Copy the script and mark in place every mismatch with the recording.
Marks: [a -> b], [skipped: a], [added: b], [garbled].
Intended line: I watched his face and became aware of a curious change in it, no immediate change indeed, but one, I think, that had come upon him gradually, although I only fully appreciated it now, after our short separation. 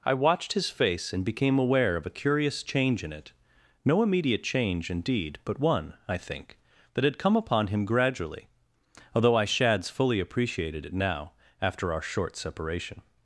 I watched his face and became aware of a curious change in it, no immediate change indeed, but one, I think, that had come upon him gradually, although I [only -> shads] fully appreciated it now, after our short separation.